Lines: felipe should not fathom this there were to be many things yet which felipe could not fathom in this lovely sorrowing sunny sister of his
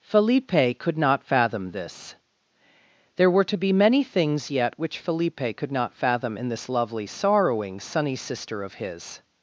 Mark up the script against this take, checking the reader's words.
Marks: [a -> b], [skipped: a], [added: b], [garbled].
felipe [should -> could] not fathom this there were to be many things yet which felipe could not fathom in this lovely sorrowing sunny sister of his